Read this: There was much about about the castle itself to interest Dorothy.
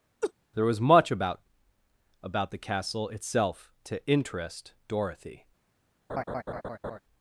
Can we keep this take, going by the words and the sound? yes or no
no